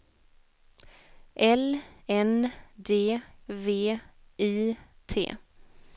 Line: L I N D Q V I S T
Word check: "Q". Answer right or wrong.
wrong